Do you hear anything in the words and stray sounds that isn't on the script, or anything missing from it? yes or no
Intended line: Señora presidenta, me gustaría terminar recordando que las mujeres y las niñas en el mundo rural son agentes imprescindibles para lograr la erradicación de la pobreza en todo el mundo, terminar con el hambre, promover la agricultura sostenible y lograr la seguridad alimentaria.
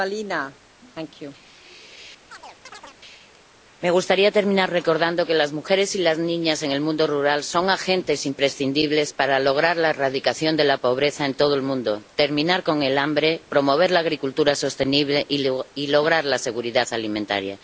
yes